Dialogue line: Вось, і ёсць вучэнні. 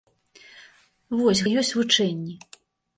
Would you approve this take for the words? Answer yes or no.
yes